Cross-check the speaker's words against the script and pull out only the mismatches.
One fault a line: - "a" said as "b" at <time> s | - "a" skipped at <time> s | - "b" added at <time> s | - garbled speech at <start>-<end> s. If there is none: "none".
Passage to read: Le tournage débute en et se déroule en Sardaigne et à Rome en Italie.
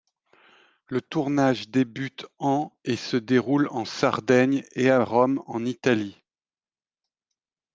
none